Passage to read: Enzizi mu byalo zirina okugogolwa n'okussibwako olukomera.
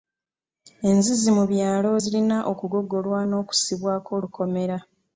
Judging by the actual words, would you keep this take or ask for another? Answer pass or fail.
pass